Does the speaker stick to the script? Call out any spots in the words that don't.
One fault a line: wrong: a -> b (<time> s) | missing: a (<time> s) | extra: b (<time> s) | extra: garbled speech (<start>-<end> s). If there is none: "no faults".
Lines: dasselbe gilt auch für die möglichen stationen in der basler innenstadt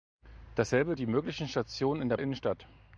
missing: gilt auch für (1.0 s)
missing: basler (2.2 s)